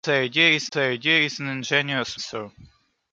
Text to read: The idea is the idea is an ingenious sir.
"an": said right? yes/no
yes